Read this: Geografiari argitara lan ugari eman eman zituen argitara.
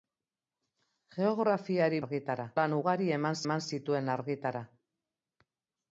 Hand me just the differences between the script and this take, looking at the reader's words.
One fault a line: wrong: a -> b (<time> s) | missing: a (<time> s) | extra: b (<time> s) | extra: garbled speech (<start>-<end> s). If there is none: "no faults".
no faults